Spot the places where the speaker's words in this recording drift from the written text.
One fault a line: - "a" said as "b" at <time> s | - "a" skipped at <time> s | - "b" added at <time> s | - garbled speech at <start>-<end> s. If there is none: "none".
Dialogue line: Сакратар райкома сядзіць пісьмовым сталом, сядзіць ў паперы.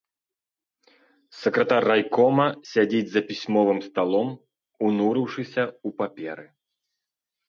- "за" added at 3.1 s
- "сядзіць" said as "унурыўшыся" at 4.9 s